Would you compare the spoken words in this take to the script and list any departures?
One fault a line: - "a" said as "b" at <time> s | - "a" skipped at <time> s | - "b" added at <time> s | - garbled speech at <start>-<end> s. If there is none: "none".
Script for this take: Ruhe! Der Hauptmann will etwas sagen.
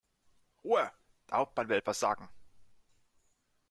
none